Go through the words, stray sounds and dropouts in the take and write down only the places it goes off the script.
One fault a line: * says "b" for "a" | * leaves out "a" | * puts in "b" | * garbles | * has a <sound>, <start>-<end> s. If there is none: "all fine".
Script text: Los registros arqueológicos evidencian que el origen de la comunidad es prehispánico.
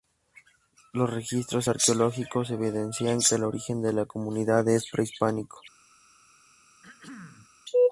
* has a throat clearing, 6.8-7.5 s